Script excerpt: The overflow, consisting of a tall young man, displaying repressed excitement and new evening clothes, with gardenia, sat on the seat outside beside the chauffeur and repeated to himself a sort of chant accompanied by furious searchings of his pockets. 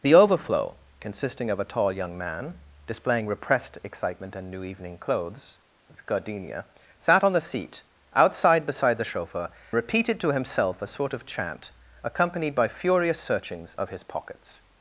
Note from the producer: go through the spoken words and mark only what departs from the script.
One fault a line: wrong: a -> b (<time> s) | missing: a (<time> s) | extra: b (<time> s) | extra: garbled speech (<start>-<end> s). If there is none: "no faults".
missing: and (9.5 s)